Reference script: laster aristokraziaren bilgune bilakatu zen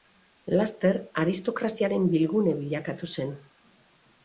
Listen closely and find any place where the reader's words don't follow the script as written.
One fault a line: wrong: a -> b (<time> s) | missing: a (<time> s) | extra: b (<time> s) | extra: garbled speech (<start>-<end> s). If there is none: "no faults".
no faults